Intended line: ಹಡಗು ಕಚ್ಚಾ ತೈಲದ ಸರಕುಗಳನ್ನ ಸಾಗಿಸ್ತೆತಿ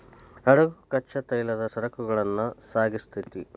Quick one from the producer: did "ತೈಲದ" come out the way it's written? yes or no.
yes